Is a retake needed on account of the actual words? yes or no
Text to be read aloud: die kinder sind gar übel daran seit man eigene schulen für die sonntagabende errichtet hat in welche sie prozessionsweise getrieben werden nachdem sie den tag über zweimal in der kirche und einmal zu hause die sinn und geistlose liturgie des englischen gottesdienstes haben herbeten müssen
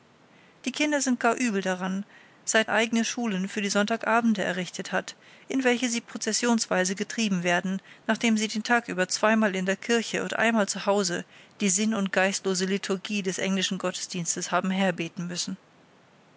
yes